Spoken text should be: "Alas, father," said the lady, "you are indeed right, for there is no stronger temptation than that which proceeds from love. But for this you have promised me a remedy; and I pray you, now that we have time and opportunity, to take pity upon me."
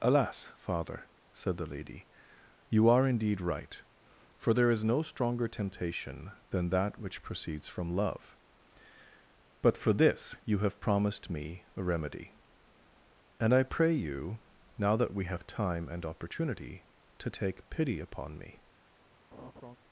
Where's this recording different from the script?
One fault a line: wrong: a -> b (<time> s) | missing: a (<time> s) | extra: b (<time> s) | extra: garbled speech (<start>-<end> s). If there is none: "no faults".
no faults